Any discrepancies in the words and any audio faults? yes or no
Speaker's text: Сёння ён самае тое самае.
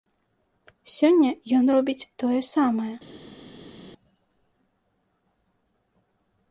yes